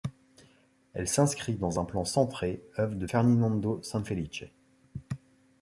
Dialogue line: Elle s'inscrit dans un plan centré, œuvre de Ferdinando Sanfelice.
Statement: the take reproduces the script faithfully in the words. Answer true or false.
true